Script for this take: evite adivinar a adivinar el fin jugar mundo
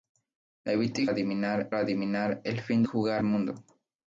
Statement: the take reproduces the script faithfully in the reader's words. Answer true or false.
true